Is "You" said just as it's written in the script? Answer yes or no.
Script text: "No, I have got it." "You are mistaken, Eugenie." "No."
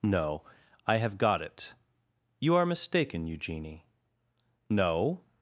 yes